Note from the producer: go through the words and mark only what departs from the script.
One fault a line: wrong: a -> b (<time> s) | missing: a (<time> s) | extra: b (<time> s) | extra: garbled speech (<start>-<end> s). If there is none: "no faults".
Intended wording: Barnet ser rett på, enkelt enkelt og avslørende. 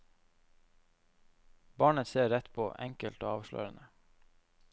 missing: enkelt (3.2 s)